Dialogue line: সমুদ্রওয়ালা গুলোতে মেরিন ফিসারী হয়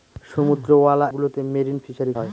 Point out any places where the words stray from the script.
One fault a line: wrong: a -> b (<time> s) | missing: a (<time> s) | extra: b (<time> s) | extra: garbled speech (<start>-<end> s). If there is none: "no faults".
no faults